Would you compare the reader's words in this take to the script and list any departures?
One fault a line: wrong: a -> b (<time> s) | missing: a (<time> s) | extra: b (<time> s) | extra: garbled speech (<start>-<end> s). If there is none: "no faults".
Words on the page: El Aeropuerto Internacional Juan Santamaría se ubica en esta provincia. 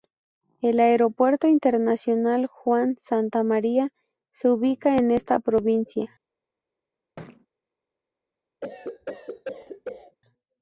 no faults